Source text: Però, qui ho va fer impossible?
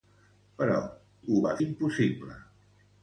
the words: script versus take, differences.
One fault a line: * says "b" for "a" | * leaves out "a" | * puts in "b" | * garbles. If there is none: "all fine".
* leaves out "qui"
* leaves out "fer"